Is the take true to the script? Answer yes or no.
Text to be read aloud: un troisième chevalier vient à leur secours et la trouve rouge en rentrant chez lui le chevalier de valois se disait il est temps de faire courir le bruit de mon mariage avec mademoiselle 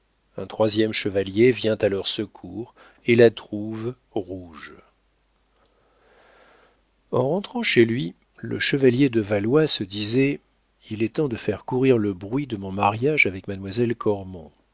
yes